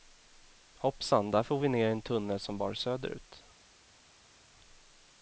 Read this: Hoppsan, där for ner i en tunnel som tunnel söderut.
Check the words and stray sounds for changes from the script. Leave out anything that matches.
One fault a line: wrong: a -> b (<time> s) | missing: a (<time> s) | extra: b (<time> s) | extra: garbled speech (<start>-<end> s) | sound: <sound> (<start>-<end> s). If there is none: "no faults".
extra: vi (1.6 s)
wrong: tunnel -> bar (2.6 s)